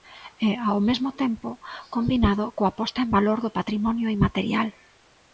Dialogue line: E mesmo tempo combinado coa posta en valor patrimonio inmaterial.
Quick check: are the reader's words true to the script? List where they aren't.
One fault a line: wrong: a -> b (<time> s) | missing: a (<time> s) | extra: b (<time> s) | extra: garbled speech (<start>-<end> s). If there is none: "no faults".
extra: ao (0.7 s)
extra: do (3.4 s)